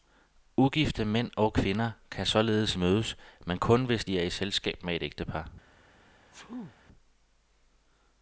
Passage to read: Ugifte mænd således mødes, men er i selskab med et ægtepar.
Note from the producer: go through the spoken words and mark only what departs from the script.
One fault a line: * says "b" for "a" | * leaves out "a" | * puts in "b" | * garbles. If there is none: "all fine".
* puts in "og kvinder kan"
* puts in "kun hvis de"